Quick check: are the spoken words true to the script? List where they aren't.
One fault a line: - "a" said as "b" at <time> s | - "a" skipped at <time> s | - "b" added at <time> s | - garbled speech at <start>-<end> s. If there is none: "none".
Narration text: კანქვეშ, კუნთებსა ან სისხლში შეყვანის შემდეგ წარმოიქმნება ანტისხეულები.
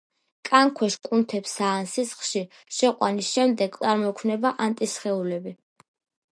none